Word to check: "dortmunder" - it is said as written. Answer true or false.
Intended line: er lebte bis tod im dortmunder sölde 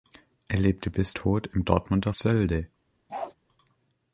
true